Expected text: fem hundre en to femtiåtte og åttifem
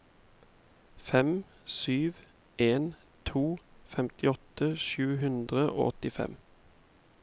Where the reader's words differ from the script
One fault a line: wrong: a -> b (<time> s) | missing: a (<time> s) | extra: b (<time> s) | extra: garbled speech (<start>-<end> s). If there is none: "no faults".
wrong: hundre -> sju (1.6 s)
extra: sju hundre (4.9 s)